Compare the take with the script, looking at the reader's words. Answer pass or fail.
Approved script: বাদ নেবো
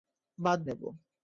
pass